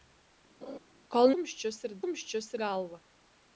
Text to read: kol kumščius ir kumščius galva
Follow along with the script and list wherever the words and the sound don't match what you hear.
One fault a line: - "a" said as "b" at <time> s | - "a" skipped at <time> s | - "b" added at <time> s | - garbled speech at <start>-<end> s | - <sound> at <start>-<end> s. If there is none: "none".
- laugh at 0.6-0.8 s